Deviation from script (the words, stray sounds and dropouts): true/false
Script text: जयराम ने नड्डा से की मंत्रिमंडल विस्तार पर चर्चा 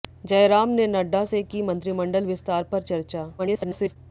true